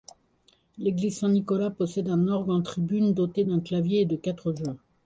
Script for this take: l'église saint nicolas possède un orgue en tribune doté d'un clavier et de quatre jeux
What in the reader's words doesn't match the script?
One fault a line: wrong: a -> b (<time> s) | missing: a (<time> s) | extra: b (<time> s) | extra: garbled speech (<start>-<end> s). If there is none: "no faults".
no faults